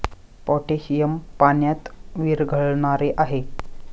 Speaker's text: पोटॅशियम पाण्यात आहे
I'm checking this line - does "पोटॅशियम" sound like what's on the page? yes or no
yes